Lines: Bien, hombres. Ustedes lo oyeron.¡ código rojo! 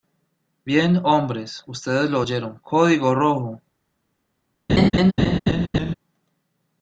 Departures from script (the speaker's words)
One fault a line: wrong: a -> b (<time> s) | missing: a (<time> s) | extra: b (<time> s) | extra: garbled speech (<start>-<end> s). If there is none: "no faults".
no faults